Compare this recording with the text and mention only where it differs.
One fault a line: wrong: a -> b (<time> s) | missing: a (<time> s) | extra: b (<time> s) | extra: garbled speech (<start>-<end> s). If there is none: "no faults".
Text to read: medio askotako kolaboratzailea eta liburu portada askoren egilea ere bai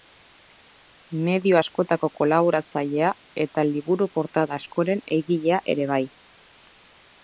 no faults